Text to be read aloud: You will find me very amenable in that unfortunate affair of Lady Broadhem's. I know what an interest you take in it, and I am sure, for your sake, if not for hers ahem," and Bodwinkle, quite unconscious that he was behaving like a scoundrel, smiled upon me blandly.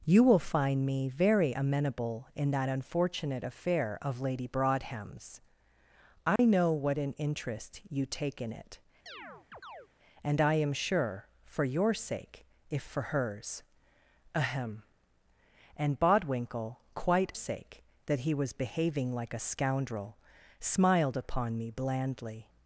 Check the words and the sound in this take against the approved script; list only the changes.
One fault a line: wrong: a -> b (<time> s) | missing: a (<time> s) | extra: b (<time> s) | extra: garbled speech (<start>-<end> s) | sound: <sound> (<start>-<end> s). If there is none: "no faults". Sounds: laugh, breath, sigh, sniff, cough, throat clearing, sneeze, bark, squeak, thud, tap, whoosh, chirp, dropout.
sound: dropout (6.4-6.4 s)
sound: chirp (9.1-9.9 s)
missing: not (12.9 s)
wrong: unconscious -> sake (17.3 s)